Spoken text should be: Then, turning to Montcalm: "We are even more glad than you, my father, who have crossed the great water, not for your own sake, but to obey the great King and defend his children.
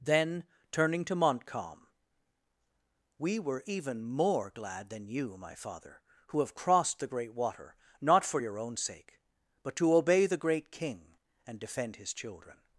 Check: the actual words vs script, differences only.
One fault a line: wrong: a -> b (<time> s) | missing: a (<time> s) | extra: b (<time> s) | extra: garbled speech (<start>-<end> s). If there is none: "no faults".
wrong: are -> were (3.4 s)